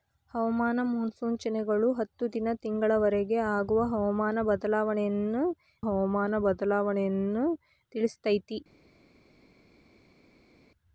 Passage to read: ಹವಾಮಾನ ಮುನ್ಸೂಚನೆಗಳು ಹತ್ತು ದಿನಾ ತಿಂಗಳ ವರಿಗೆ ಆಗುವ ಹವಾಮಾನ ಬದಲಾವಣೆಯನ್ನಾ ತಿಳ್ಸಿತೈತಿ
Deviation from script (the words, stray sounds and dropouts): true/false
true